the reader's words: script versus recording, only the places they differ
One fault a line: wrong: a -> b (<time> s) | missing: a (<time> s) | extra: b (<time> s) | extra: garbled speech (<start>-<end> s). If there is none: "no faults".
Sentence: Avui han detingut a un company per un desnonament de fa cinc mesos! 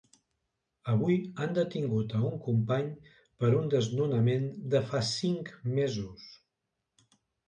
no faults